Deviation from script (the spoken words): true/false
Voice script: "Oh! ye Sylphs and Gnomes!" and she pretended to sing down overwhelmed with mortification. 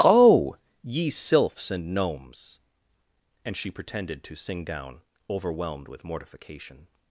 false